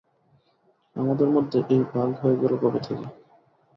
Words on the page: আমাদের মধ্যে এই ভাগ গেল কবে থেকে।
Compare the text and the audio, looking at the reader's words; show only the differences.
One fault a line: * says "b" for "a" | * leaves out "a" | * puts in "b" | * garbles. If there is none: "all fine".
* puts in "হয়ে"